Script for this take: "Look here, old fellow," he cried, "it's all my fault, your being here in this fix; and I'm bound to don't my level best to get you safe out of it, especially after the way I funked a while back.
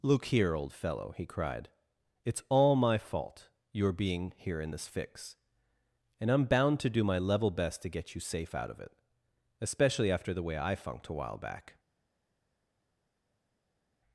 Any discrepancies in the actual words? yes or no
yes